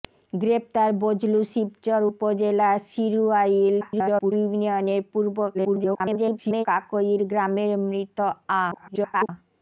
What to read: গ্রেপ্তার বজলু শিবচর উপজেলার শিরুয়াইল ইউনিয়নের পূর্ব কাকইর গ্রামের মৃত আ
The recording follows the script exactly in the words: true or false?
false